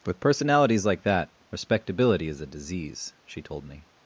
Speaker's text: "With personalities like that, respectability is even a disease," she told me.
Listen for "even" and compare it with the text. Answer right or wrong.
wrong